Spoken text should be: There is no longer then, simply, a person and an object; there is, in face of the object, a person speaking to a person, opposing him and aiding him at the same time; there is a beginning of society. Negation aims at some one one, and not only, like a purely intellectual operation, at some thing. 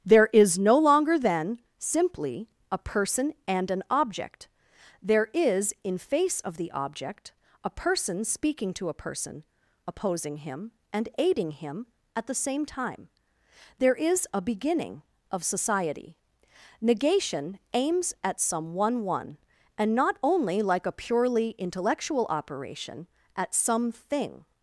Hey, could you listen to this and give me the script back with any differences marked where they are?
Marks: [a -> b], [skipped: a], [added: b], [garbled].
There is no longer then, simply, a person and an object; there is, in face of the object, a person speaking to a person, opposing him and aiding him at the same time; there is a beginning of society. Negation aims at some one one, and not only, like a purely intellectual operation, at some thing.